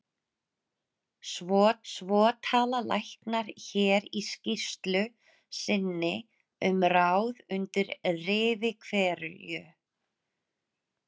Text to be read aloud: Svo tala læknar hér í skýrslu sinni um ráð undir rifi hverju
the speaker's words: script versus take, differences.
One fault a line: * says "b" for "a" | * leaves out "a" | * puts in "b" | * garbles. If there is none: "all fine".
* puts in "svo"